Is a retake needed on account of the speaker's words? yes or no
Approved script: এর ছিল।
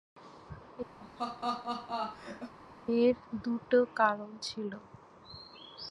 yes